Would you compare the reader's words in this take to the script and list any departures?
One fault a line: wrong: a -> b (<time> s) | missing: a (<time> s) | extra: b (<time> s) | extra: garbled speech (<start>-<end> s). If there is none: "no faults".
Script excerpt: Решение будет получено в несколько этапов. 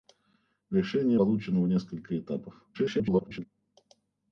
missing: будет (1.2 s)
extra: garbled speech (2.7-3.5 s)